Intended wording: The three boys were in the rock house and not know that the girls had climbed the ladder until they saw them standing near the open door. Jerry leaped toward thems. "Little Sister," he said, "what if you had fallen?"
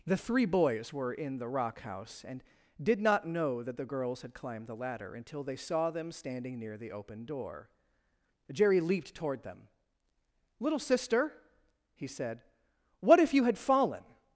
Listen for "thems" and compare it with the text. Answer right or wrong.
wrong